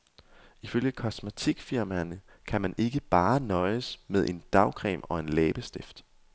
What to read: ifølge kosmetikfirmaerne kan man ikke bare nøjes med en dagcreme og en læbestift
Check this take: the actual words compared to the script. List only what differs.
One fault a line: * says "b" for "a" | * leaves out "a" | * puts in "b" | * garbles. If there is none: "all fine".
all fine